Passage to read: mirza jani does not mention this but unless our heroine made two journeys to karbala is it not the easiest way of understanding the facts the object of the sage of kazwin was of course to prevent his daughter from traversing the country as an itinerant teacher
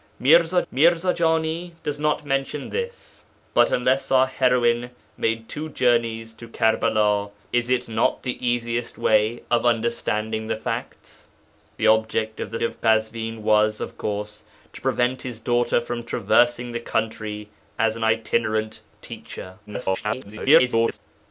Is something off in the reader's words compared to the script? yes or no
yes